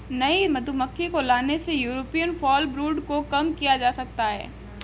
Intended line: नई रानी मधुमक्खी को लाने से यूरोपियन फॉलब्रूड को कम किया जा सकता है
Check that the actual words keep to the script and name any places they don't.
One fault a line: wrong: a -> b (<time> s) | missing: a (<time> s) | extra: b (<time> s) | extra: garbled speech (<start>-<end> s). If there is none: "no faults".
missing: रानी (0.4 s)